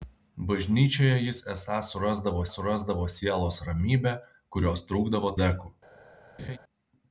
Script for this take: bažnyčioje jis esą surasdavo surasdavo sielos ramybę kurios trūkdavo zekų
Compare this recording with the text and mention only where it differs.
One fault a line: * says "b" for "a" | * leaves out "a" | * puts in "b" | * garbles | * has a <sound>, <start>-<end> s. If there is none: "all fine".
* has a laugh, 6.4-6.6 s